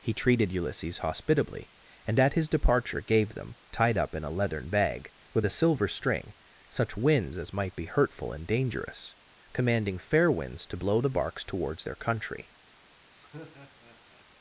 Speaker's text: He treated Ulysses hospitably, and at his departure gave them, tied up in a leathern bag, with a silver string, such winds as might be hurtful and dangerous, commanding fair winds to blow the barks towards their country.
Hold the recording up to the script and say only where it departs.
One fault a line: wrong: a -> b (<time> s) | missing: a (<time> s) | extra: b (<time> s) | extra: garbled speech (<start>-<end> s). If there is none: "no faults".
no faults